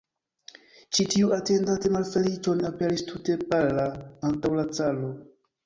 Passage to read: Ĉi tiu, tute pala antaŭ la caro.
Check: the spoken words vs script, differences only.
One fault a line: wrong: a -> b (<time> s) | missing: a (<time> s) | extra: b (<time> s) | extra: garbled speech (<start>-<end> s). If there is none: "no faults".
extra: atendante malfeliĉon aperis (1.4 s)